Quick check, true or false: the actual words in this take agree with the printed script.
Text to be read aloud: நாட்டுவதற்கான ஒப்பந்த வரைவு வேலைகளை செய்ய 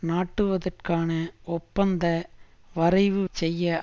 false